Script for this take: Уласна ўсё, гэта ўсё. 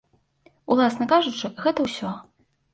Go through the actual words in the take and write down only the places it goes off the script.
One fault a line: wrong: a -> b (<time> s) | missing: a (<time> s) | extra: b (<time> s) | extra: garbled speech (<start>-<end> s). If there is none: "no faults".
wrong: ўсё -> кажучы (1.1 s)